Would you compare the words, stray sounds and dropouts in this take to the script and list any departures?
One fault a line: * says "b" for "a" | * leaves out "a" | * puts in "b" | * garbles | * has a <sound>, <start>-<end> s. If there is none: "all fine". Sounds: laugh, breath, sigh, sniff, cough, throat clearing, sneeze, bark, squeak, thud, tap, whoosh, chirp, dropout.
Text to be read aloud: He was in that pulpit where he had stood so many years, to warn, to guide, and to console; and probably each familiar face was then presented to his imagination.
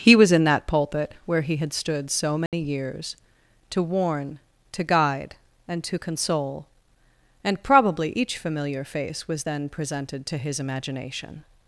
* has a dropout, 2.5-2.5 s